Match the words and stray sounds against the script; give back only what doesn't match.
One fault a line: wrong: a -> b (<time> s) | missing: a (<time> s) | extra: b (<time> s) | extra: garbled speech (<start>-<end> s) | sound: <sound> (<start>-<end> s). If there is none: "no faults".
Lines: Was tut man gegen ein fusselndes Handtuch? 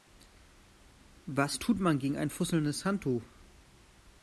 no faults